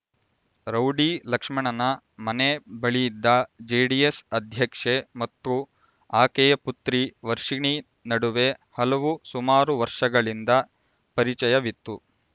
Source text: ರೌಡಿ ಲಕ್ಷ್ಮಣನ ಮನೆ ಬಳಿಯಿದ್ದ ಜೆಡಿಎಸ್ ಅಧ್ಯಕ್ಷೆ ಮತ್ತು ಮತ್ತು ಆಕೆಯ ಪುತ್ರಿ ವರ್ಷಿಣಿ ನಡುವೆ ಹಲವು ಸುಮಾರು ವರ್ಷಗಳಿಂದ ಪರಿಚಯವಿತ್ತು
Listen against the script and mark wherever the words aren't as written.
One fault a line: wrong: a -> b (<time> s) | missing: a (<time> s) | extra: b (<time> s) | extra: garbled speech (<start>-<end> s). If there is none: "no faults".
missing: ಮತ್ತು (5.5 s)